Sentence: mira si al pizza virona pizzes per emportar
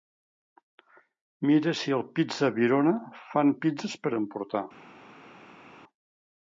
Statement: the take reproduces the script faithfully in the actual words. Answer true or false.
false